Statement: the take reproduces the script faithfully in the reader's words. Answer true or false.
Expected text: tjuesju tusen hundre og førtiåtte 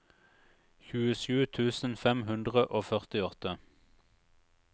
false